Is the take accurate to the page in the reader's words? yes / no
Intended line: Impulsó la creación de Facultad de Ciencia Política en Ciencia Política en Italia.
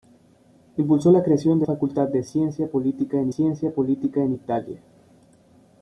yes